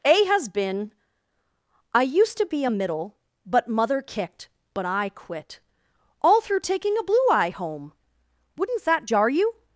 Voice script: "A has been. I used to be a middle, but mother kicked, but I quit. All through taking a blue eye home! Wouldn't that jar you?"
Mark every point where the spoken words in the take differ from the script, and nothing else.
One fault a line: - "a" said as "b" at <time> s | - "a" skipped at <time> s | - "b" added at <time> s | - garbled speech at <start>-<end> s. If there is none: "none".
none